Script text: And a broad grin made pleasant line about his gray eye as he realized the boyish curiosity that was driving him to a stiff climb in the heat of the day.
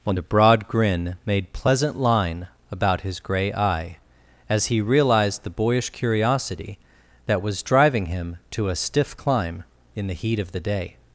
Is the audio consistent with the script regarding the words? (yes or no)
yes